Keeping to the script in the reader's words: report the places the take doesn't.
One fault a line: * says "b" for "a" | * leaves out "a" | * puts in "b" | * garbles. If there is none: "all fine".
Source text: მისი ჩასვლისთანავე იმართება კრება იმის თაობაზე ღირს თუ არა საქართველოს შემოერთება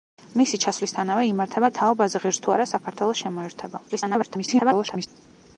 * leaves out "კრება იმის"
* garbles